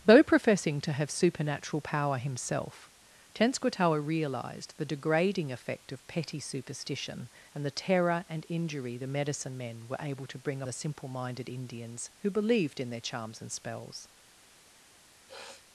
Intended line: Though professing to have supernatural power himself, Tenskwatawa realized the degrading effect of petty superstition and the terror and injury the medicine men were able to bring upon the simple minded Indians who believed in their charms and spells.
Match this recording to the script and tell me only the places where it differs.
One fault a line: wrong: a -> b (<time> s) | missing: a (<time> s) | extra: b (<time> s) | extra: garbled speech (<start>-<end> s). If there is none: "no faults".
missing: upon (10.6 s)